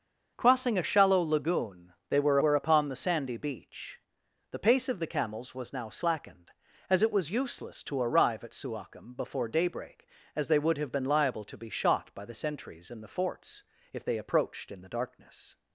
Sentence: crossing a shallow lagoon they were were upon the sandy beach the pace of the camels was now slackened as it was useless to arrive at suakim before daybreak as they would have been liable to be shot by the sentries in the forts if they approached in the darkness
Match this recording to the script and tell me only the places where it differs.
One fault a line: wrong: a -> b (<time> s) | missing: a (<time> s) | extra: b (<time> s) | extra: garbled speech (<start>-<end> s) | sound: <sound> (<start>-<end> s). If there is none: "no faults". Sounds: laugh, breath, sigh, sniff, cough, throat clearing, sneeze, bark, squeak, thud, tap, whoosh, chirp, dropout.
no faults